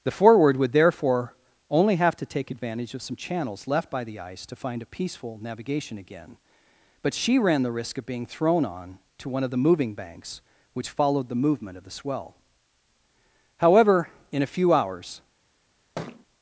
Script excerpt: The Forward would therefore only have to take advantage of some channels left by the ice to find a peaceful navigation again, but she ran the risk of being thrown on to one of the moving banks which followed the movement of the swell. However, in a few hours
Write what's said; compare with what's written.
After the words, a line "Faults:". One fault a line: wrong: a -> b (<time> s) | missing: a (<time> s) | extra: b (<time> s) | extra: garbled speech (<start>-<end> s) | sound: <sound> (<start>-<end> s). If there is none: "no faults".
The Forward would therefore only have to take advantage of some channels left by the ice to find a peaceful navigation again, but she ran the risk of being thrown on to one of the moving banks which followed the movement of the swell. However, in a few hours
Faults:
sound: thud (16.0-16.3 s)